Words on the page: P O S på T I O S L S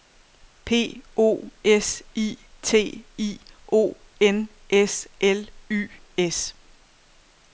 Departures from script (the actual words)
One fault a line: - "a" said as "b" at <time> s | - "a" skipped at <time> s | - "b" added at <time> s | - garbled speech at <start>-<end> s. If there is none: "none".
- "på" said as "I" at 2.2 s
- "N" added at 4.2 s
- "Y" added at 5.7 s